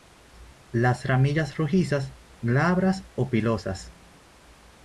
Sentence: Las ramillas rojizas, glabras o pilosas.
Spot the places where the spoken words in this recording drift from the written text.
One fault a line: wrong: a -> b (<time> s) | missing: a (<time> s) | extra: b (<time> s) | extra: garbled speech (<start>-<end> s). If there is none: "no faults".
no faults